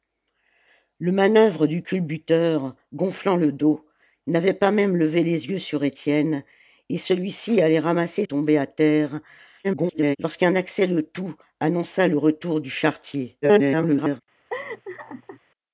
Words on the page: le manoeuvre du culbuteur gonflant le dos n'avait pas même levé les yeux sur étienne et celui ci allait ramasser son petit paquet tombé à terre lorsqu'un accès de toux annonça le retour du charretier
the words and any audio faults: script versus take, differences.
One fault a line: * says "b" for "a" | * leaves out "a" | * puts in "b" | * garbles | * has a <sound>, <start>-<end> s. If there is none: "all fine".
* leaves out "son petit paquet"
* garbles
* garbles
* has a laugh, 14.5-15.4 s